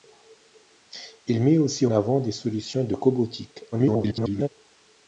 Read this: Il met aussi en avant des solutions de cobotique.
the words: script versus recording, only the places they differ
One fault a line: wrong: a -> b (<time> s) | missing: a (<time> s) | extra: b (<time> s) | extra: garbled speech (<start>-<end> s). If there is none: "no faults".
missing: en (1.9 s)
extra: garbled speech (3.7-4.5 s)